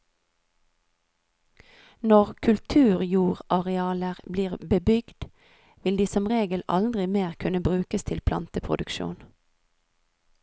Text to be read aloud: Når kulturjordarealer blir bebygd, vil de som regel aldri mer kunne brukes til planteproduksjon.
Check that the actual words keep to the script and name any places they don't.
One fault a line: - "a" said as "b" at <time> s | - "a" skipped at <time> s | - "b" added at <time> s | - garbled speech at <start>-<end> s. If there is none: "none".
none